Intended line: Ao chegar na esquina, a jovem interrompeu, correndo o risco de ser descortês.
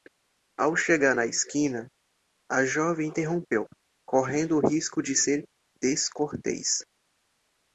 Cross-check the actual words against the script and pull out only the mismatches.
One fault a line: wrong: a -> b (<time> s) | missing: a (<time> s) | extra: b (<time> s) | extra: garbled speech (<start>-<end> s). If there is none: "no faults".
no faults